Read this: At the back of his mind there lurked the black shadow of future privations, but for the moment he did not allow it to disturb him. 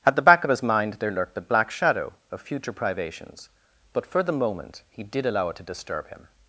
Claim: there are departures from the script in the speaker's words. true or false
true